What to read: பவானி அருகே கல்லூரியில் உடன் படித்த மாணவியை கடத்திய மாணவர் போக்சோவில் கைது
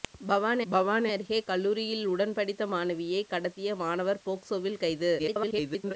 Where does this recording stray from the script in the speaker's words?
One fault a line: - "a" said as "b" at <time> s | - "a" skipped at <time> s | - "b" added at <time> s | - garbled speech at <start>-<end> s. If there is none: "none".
- "பவானி" added at 0.7 s
- garbled speech at 5.2-5.9 s